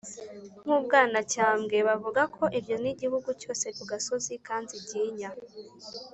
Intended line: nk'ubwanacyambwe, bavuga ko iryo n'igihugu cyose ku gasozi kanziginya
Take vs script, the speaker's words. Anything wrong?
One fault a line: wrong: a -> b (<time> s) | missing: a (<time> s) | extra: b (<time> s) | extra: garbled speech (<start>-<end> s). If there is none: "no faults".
no faults